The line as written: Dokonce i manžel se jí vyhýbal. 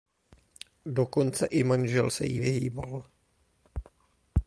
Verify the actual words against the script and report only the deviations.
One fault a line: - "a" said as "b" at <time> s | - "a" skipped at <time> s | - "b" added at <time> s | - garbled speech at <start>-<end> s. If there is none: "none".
none